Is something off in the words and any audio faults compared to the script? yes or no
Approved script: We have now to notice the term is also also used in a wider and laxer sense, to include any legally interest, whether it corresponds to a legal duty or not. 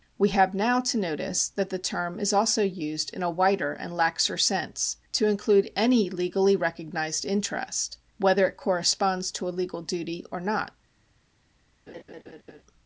yes